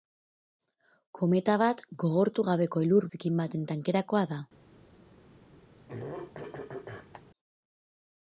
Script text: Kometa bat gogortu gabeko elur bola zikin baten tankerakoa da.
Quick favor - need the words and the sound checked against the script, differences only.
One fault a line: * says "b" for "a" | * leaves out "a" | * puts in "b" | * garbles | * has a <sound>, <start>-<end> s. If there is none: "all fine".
* leaves out "bola"
* has a throat clearing, 5.8-7.2 s